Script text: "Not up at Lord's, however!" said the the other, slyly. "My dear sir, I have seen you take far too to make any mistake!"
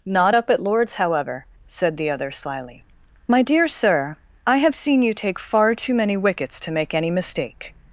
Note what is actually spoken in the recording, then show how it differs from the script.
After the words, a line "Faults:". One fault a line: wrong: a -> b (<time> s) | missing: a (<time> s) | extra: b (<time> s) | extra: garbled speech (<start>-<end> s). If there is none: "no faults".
"Not up at Lord's, however!" said the other, slyly. "My dear sir, I have seen you take far too many wickets to make any mistake!"
Faults:
missing: the (2.1 s)
extra: many wickets (5.9 s)